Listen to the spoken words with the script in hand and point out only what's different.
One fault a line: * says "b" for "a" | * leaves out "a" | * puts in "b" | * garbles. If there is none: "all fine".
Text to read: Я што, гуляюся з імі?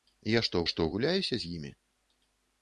* puts in "што"